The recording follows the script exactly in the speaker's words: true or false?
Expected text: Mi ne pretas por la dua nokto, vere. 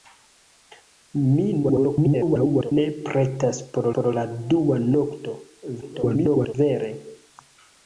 false